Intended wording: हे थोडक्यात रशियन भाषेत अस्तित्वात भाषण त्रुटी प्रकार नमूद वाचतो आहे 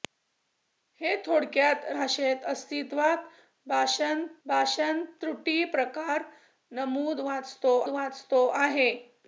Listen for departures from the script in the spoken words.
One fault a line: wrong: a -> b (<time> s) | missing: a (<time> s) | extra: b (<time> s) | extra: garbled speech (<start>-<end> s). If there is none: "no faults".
missing: रशियन (1.8 s)
extra: भाषण (4.5 s)
extra: वाचतो (7.9 s)